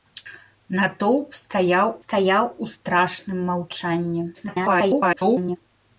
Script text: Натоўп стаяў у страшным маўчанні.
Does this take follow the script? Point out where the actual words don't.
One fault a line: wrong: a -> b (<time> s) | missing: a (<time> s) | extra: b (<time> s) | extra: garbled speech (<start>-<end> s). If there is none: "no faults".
extra: стаяў (2.0 s)
extra: garbled speech (4.3-5.6 s)